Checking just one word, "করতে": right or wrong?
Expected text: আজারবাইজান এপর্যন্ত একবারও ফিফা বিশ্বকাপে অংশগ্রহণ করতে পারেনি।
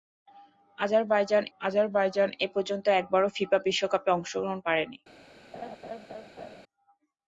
wrong